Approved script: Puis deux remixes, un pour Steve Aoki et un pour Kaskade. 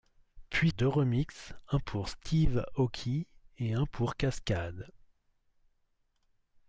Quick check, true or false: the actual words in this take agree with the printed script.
true